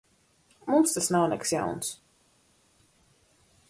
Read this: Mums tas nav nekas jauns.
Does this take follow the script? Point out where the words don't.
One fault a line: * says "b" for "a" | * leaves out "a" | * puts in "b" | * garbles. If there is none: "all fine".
all fine